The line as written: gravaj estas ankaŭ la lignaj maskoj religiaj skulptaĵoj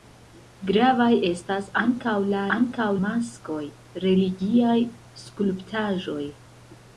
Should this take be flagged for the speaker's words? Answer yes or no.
yes